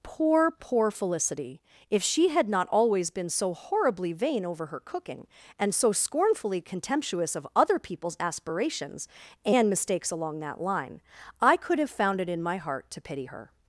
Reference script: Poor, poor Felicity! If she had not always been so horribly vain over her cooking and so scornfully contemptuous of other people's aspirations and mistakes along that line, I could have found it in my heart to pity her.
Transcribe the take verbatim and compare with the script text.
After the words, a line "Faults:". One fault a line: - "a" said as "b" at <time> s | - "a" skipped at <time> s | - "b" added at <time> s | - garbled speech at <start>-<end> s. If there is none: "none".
Poor, poor Felicity! If she had not always been so horribly vain over her cooking and so scornfully contemptuous of other people's aspirations and mistakes along that line, I could have found it in my heart to pity her.
Faults:
none